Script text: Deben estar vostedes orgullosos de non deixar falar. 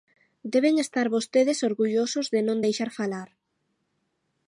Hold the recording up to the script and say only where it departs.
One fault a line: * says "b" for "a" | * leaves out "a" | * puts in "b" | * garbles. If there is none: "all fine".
all fine